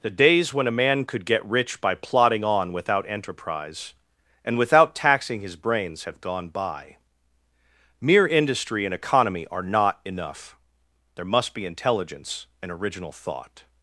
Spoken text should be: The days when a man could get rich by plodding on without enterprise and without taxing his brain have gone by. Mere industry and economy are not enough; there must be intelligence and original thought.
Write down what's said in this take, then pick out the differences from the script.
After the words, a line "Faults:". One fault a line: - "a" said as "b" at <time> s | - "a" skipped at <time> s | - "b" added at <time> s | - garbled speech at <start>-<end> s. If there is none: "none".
The days when a man could get rich by plodding on without enterprise and without taxing his brains have gone by. Mere industry and economy are not enough; there must be intelligence and original thought.
Faults:
- "brain" said as "brains" at 5.5 s